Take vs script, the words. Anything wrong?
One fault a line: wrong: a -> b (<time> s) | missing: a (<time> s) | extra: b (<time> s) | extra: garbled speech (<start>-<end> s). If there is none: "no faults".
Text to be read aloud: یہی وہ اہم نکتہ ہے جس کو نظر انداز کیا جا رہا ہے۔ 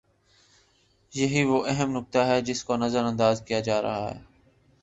no faults